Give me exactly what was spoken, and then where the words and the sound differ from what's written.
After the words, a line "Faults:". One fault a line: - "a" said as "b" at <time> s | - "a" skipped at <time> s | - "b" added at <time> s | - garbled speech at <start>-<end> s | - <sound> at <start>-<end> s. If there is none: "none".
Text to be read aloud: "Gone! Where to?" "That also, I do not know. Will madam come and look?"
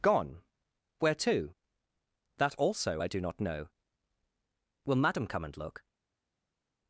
"Gone! Where to?" "That also, I do not know. Will madam come and look?"
Faults:
none